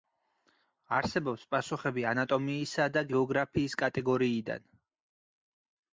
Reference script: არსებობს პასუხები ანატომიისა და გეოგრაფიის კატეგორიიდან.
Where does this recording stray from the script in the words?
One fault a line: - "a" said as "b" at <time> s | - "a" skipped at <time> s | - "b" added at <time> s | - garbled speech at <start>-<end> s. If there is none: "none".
none